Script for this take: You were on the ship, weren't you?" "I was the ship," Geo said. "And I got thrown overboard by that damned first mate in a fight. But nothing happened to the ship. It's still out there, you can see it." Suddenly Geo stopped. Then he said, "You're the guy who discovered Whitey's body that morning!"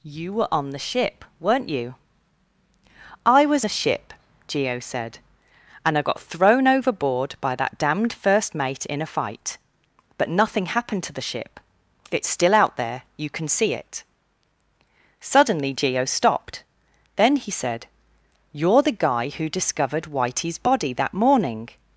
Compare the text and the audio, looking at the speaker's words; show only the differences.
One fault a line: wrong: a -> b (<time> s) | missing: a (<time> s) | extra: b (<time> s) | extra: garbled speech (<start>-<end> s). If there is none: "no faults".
no faults